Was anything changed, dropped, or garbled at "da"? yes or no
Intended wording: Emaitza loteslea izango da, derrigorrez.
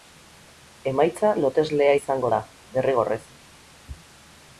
no